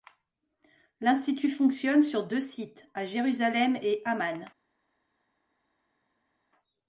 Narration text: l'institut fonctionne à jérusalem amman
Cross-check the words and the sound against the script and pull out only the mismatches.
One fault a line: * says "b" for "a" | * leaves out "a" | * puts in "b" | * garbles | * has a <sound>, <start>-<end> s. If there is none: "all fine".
* puts in "sur deux sites"
* puts in "et"